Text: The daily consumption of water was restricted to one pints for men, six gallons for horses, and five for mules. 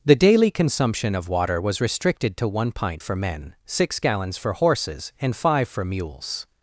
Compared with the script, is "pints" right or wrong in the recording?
wrong